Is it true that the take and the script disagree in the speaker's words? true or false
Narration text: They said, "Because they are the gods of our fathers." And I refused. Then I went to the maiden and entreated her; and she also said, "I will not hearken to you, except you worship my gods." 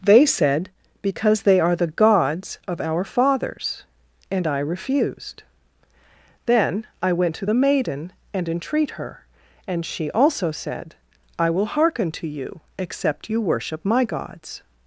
true